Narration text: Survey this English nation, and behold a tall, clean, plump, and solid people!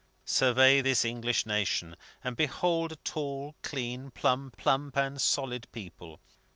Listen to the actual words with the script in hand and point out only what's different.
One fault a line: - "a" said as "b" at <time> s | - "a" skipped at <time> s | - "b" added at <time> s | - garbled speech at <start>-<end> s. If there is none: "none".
- "plump" added at 4.5 s